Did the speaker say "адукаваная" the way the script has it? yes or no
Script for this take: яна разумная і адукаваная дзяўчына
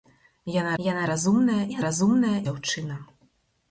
no